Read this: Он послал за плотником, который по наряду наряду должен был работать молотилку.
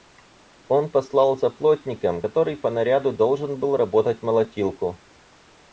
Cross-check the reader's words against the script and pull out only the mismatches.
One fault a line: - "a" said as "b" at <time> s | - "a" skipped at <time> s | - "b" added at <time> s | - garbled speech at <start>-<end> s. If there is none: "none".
- "наряду" skipped at 3.1 s